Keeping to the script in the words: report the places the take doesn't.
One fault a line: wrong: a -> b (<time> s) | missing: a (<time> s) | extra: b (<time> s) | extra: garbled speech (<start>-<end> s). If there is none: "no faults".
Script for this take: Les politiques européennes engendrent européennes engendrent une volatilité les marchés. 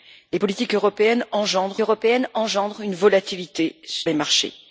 no faults